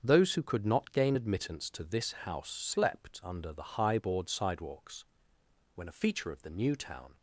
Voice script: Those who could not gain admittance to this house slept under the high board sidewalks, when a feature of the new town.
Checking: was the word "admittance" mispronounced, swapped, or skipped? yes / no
no